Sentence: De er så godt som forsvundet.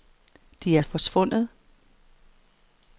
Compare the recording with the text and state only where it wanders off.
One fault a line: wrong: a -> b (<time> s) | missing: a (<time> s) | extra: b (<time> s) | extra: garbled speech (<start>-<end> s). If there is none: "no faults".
missing: så godt som (0.8 s)